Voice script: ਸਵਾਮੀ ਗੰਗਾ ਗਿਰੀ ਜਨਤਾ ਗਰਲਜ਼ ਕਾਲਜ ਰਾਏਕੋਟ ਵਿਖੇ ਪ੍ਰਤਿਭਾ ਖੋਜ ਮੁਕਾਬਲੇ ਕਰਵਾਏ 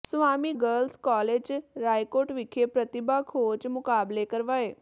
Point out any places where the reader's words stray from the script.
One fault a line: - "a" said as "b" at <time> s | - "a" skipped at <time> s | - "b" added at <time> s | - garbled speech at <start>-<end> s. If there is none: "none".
- "ਗੰਗਾ ਗਿਰੀ ਜਨਤਾ" skipped at 0.5 s